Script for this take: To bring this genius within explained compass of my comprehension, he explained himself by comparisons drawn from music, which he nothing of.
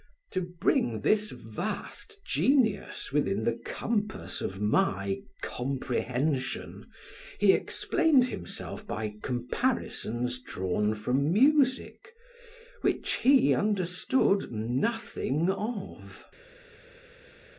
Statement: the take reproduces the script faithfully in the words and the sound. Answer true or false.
false